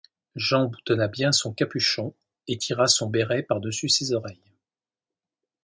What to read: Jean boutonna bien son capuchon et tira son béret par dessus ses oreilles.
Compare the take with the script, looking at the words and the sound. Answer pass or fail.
pass